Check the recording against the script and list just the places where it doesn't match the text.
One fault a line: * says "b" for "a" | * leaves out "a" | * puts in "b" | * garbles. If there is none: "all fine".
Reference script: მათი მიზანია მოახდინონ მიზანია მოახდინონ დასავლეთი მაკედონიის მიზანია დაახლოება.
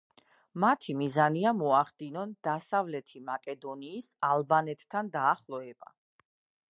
* leaves out "მიზანია მოახდინონ"
* says "ალბანეთთან" for "მიზანია"